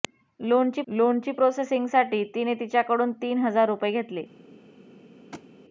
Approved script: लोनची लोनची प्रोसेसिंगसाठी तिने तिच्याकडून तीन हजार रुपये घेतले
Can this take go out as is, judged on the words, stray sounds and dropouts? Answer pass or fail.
fail